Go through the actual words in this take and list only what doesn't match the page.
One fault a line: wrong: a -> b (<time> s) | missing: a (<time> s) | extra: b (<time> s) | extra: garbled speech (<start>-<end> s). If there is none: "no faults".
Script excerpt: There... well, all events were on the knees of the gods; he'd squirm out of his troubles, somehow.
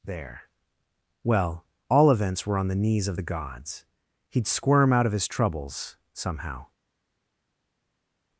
no faults